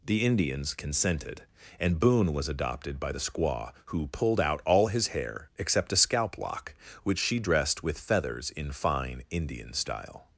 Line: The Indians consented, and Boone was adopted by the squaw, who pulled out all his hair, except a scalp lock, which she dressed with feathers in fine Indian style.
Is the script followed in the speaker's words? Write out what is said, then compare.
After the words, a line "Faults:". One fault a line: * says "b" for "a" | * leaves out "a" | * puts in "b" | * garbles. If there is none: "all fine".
The Indians consented, and Boone was adopted by the squaw, who pulled out all his hair, except a scalp lock, which she dressed with feathers in fine Indian style.
Faults:
all fine